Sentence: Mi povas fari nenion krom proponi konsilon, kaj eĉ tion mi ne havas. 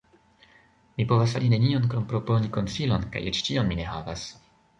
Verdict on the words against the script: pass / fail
pass